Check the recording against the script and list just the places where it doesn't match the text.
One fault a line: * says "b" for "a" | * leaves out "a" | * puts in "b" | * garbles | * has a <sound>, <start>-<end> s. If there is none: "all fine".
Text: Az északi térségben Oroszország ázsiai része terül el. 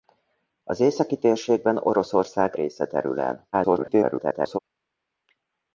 * leaves out "ázsiai"
* garbles